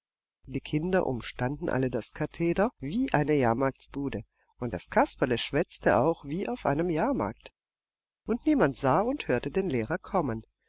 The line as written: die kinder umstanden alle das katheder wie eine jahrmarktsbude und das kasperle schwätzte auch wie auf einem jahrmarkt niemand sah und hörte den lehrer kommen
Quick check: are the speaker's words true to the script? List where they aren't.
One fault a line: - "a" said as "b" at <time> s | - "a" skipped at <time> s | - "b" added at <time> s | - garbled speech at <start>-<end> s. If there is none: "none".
- "und" added at 8.2 s